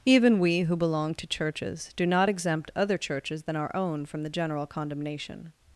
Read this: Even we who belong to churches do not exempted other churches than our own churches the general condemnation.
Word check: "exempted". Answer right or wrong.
wrong